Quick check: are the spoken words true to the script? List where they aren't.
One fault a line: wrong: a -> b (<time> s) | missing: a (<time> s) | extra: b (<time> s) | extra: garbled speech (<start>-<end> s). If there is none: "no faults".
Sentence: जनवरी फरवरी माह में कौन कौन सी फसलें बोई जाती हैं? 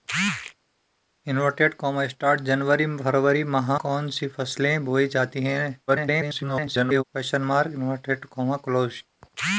missing: में कौन (3.7 s)
extra: garbled speech (5.9-7.0 s)